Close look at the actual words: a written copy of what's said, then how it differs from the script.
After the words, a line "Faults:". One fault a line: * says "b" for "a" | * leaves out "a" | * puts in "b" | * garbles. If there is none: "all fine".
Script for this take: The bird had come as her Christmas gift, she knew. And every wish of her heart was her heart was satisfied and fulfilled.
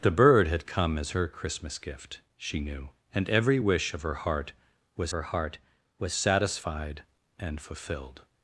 The bird had come as her Christmas gift, she knew. And every wish of her heart was her heart was satisfied and fulfilled.
Faults:
all fine